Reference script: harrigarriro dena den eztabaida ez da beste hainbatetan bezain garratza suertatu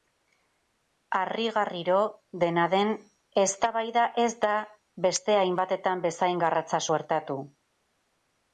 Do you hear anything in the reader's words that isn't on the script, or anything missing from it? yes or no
no